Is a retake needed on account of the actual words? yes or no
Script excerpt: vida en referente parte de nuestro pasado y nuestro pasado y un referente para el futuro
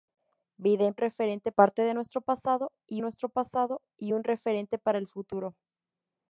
no